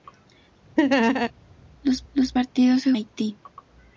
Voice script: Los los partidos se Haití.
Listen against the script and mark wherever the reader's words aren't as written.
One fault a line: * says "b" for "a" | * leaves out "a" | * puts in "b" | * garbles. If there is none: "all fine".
all fine